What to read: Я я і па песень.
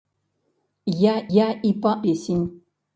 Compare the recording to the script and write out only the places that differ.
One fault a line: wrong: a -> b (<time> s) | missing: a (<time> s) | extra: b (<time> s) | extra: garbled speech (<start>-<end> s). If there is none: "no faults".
no faults